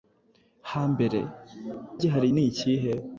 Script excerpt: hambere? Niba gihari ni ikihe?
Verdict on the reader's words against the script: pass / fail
fail